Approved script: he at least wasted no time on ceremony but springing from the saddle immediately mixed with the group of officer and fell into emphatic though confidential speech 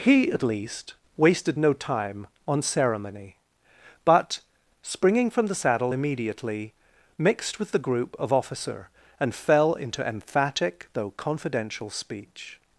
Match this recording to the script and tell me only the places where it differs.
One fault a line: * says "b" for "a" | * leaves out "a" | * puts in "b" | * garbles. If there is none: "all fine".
all fine